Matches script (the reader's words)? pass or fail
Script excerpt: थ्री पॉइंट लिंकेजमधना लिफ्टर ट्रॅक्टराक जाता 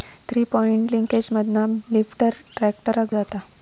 pass